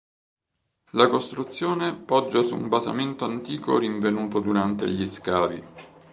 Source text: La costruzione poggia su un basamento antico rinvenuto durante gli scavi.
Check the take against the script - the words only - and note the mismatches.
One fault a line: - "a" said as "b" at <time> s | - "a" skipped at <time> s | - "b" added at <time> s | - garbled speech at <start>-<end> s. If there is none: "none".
none